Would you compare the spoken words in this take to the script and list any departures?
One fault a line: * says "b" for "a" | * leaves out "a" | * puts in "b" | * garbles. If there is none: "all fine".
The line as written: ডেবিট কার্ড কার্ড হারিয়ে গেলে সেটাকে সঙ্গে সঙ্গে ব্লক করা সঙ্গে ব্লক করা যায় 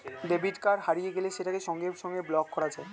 * leaves out "কার্ড"
* leaves out "সঙ্গে ব্লক করা"